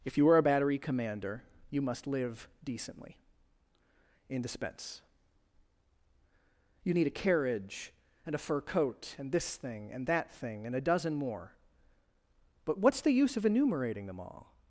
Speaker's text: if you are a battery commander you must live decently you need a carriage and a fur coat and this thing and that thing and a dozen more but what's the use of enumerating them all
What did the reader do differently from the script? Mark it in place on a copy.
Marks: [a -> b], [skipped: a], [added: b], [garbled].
if you are a battery commander you must live decently [added: in dispense] you need a carriage and a fur coat and this thing and that thing and a dozen more but what's the use of enumerating them all